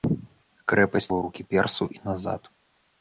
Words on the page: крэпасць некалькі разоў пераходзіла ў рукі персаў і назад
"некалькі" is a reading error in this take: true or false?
true